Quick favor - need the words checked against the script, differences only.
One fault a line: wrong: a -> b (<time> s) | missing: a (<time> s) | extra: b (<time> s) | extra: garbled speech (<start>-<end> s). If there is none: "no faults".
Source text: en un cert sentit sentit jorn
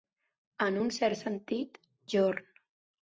missing: sentit (1.8 s)